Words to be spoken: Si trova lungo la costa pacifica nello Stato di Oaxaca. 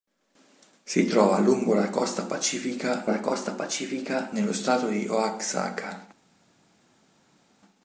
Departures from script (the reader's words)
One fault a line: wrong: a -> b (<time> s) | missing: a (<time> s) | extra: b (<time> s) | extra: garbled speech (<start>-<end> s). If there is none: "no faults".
extra: la costa pacifica (3.1 s)